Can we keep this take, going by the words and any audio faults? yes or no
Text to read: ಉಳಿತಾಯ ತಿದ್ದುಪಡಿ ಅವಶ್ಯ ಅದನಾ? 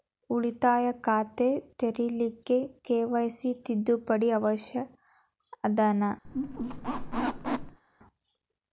no